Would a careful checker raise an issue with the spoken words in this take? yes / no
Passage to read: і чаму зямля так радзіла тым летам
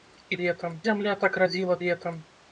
yes